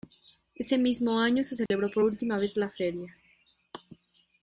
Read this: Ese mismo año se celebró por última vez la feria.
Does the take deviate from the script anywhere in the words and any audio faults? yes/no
yes